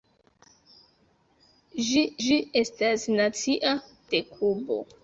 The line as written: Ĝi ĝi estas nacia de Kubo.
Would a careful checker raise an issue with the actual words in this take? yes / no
no